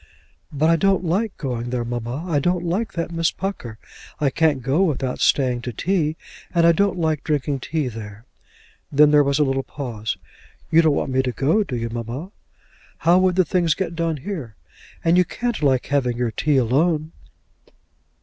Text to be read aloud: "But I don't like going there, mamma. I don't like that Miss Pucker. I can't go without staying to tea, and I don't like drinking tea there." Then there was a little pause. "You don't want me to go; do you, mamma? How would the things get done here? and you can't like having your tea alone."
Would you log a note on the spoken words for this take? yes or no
no